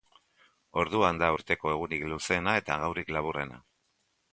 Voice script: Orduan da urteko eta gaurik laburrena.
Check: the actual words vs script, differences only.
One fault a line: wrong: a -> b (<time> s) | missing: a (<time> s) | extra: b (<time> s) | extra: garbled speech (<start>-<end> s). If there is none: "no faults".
extra: egunik luzeena (1.7 s)